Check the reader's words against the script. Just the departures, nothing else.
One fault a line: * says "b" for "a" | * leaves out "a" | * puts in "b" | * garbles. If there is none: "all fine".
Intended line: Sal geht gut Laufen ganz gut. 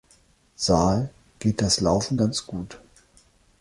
* says "das" for "gut"